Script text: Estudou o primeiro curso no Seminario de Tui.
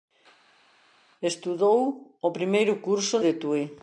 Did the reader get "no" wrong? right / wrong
wrong